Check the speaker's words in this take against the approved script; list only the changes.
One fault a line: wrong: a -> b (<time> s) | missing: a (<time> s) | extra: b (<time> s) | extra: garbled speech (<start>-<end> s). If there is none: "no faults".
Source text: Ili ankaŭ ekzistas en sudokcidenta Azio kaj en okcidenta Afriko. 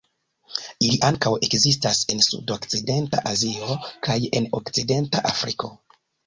no faults